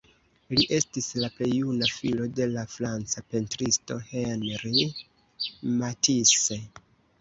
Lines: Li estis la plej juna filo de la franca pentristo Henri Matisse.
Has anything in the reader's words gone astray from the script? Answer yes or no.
no